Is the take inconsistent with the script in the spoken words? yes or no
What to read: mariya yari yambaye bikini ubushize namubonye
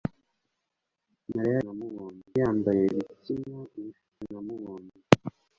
yes